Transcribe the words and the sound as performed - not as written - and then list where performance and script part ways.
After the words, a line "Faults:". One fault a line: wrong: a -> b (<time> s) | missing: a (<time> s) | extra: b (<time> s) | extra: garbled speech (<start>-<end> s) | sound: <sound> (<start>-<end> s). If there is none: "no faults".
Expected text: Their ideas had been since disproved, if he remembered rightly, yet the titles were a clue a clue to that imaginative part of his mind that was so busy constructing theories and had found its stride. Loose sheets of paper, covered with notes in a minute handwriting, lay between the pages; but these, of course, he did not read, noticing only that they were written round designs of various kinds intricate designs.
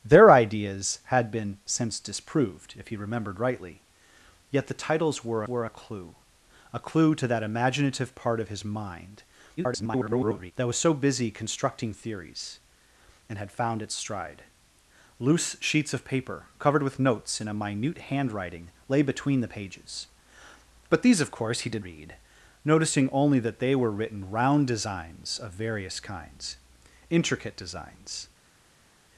Their ideas had been since disproved, if he remembered rightly, yet the titles were were a clue a clue to that imaginative part of his mind [garbled] that was so busy constructing theories and had found its stride. Loose sheets of paper, covered with notes in a minute handwriting, lay between the pages; but these, of course, he did read, noticing only that they were written round designs of various kinds intricate designs.
Faults:
extra: were (5.5 s)
extra: garbled speech (9.6-10.5 s)
missing: not (21.8 s)